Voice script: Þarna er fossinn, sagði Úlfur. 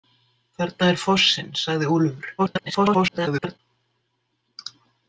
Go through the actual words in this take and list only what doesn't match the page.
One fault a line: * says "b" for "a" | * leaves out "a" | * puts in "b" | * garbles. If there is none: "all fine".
* garbles